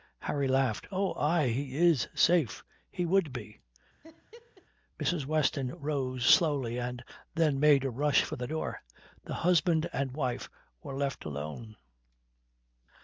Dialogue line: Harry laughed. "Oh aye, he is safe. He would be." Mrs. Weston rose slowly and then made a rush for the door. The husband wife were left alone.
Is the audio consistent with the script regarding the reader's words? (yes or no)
no